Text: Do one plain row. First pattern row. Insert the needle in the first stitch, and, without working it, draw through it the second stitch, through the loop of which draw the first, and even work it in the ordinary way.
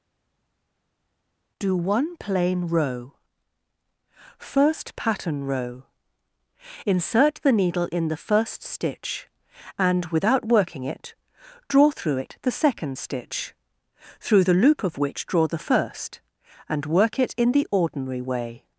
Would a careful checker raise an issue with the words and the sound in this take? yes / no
yes